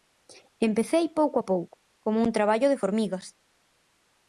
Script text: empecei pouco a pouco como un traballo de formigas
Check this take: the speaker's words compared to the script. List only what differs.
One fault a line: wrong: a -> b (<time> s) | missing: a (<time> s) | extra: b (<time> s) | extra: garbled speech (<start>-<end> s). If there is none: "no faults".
no faults